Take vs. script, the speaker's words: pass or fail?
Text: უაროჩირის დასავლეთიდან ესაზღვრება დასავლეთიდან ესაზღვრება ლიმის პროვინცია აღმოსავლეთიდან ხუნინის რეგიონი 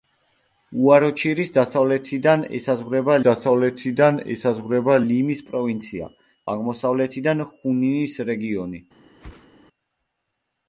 pass